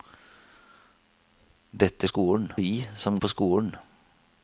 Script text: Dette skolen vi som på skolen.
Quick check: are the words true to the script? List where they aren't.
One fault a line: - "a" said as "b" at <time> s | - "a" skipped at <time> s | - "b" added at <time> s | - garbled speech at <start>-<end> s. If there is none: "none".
none